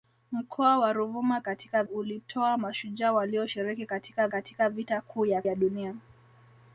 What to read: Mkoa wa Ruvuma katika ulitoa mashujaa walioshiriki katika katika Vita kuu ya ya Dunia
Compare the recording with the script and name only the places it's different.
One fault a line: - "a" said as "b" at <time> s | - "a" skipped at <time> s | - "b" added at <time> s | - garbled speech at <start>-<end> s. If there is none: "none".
none